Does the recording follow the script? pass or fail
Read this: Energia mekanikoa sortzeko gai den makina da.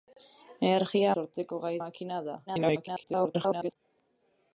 fail